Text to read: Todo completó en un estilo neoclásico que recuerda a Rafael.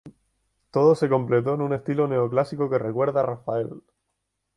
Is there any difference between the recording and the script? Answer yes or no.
yes